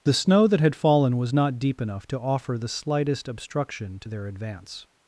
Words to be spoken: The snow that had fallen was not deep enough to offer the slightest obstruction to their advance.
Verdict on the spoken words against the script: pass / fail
pass